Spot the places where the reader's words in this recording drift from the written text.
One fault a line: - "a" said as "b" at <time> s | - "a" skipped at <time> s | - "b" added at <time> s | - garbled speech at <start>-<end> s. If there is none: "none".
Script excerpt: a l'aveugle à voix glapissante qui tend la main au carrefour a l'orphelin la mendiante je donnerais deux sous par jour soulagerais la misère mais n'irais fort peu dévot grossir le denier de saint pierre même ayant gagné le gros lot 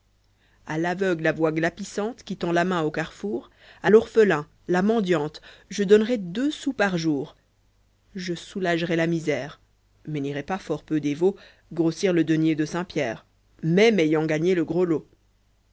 - "je" added at 8.1 s
- "pas" added at 10.4 s